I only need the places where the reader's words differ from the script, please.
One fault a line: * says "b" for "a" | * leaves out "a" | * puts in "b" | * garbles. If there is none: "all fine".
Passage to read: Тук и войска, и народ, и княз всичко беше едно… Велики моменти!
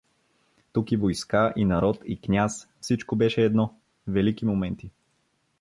all fine